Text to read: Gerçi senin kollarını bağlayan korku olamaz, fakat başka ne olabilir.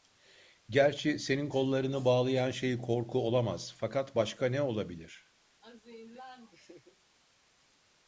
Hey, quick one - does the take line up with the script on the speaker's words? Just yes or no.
no